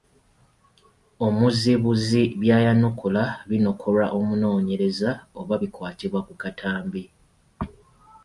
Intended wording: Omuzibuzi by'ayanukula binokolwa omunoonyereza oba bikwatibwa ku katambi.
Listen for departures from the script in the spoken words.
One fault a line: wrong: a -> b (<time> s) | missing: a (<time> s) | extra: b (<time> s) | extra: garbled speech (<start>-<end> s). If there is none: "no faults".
no faults